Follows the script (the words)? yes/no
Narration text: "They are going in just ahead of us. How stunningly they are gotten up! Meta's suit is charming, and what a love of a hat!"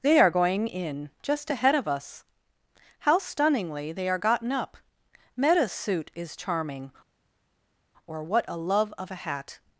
no